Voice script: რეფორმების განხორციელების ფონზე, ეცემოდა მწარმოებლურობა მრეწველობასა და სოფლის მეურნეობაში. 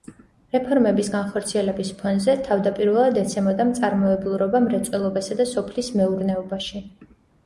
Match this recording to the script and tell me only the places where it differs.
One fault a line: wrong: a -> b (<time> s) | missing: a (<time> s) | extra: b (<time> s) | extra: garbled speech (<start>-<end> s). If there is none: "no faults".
extra: თავდაპირველად (2.5 s)